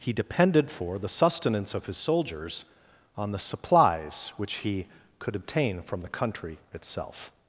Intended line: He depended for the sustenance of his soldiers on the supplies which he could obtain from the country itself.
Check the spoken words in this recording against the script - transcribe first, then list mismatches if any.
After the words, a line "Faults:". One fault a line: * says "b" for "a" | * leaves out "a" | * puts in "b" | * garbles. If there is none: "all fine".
He depended for the sustenance of his soldiers on the supplies which he could obtain from the country itself.
Faults:
all fine